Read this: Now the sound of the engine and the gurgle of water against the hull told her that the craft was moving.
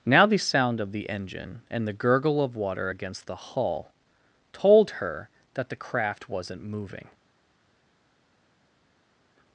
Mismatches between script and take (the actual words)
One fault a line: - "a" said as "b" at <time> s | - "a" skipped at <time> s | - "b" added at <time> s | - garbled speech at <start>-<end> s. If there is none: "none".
- "was" said as "wasn't" at 6.3 s